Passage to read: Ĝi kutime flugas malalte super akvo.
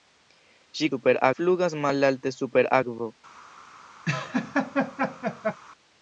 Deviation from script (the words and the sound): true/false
true